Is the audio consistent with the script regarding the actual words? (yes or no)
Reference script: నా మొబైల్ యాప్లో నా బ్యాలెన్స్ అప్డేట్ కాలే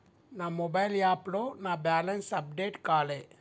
yes